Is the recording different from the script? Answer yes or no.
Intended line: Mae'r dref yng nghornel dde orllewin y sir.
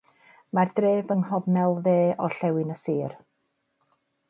no